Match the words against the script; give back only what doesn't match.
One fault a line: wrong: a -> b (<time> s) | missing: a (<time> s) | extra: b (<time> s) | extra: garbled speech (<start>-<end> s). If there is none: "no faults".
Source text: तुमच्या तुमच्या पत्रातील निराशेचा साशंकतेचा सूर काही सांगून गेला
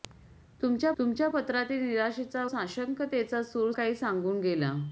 no faults